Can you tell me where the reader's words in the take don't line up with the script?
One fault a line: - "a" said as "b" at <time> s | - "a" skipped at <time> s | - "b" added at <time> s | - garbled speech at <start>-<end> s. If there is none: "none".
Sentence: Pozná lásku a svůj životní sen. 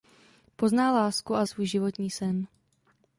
none